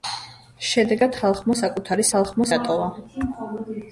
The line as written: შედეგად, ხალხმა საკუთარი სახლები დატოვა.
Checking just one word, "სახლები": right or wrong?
wrong